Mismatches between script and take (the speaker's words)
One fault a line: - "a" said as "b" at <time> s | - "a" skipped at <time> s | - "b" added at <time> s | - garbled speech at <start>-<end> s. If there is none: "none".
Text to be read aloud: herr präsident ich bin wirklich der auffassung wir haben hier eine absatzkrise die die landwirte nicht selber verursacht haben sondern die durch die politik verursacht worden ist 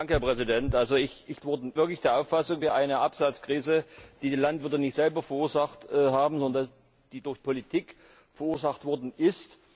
- "bin" said as "worden" at 1.4 s
- "wir haben" skipped at 2.6 s
- "die" skipped at 7.4 s